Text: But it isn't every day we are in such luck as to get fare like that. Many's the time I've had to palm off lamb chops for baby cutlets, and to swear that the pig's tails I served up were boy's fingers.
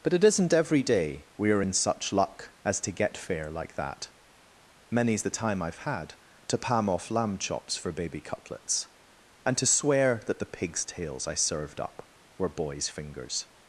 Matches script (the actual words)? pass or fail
pass